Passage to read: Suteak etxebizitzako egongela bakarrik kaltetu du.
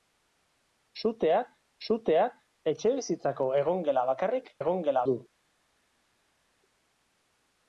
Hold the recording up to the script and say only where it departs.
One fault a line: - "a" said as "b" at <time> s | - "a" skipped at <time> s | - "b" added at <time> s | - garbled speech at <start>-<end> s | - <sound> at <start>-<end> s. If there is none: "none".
- "suteak" added at 1.9 s
- "kaltetu" said as "egongela" at 4.6 s